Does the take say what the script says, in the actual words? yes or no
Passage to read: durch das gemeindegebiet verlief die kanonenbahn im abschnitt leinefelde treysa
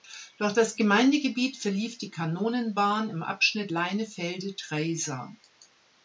yes